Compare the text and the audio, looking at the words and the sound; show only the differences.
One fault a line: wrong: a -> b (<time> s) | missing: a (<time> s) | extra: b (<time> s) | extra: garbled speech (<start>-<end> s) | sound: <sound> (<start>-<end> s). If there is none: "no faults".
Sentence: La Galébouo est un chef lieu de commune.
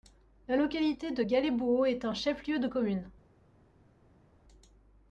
extra: localité de (0.5 s)